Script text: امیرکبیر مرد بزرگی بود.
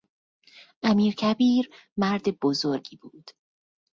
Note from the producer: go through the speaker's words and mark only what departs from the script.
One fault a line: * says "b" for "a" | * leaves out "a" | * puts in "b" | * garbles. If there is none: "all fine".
all fine